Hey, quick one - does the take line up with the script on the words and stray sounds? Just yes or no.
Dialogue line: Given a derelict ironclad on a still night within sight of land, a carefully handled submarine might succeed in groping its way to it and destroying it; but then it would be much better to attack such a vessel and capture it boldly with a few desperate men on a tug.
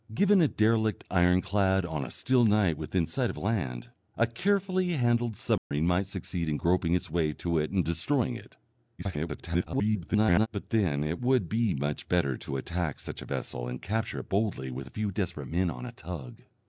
no